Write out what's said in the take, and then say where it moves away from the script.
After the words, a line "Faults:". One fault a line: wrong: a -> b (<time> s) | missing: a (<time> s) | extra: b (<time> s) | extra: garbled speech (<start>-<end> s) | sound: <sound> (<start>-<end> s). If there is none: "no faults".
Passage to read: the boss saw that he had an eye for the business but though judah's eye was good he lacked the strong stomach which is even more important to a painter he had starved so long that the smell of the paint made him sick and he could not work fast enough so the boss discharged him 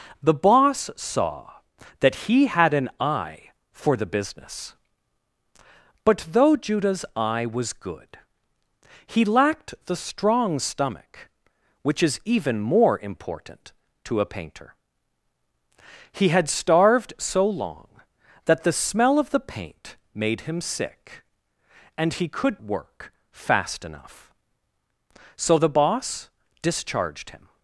the boss saw that he had an eye for the business but though judah's eye was good he lacked the strong stomach which is even more important to a painter he had starved so long that the smell of the paint made him sick and he could work fast enough so the boss discharged him
Faults:
missing: not (22.6 s)